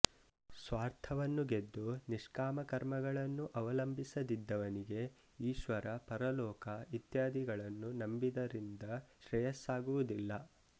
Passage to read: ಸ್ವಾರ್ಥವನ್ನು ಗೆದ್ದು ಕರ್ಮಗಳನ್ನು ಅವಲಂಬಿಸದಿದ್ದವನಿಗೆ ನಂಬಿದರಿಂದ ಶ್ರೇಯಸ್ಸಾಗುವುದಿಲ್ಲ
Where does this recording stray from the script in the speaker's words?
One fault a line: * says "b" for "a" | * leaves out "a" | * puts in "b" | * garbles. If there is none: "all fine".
* puts in "ನಿಷ್ಕಾಮ"
* puts in "ಈಶ್ವರ ಪರಲೋಕ ಇತ್ಯಾದಿಗಳನ್ನು"